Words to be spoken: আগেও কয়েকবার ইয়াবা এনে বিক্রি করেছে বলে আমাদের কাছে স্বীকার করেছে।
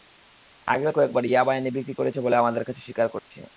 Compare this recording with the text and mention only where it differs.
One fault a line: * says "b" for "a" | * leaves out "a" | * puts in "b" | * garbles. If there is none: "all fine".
all fine